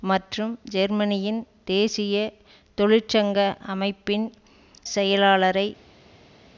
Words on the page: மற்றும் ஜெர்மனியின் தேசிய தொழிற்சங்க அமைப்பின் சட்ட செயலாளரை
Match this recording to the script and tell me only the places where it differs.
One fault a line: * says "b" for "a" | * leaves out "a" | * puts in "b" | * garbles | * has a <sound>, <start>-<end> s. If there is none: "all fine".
* leaves out "சட்ட"